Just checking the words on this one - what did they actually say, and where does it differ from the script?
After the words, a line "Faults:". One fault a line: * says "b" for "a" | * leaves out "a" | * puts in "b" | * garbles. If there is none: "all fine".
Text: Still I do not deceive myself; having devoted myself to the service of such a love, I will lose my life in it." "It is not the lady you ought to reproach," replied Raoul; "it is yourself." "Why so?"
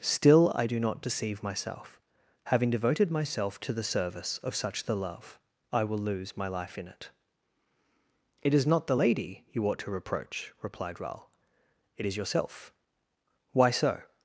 Still I do not deceive myself; having devoted myself to the service of such the love, I will lose my life in it." "It is not the lady you ought to reproach," replied Raoul; "it is yourself." "Why so?"
Faults:
* says "the" for "a"